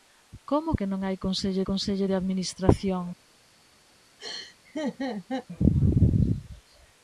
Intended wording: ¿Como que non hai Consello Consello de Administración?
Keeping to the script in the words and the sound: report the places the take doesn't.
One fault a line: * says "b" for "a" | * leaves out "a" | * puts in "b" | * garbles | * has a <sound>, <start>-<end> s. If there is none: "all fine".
* has a laugh, 4.2-5.5 s